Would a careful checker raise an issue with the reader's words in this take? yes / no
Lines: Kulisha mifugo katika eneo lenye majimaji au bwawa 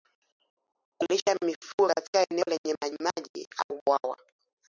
no